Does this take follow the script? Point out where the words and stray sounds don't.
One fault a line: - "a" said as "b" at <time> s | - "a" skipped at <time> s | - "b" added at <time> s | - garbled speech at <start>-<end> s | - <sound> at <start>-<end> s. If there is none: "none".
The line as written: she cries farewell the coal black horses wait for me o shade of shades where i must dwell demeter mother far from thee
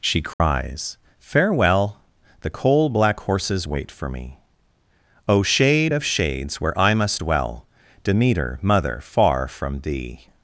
- dropout at 0.3-0.4 s